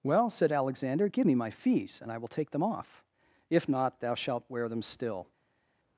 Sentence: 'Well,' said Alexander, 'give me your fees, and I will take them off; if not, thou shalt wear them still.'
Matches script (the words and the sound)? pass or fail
fail